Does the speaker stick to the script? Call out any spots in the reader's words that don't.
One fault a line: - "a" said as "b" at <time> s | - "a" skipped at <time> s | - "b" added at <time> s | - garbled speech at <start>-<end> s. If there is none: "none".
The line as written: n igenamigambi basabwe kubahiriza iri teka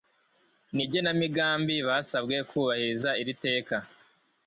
none